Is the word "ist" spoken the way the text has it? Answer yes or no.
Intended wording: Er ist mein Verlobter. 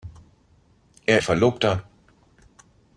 no